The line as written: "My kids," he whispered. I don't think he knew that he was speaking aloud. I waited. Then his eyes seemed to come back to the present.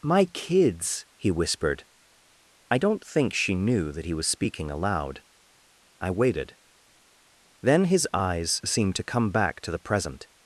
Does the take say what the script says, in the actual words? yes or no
no